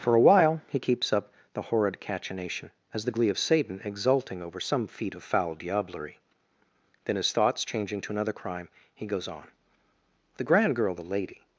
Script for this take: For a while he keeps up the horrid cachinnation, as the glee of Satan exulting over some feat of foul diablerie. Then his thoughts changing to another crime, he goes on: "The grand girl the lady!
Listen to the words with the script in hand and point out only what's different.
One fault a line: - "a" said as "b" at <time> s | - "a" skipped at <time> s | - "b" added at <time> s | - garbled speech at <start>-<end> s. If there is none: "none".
none